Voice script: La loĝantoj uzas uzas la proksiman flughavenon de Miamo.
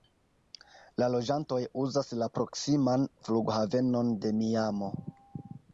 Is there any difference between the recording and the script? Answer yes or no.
yes